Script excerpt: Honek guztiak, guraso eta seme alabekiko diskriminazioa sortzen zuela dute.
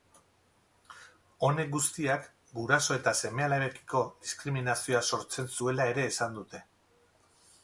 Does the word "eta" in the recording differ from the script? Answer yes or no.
no